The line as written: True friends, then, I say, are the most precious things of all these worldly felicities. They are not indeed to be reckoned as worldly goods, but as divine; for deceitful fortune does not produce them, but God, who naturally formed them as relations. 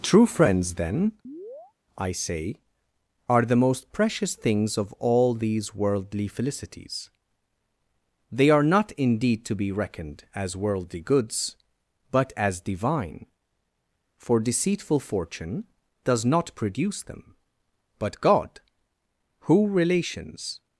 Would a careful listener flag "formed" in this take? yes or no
yes